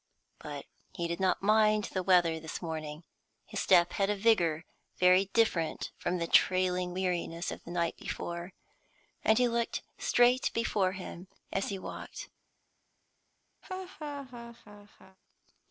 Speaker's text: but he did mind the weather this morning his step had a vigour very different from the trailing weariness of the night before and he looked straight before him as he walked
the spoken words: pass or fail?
fail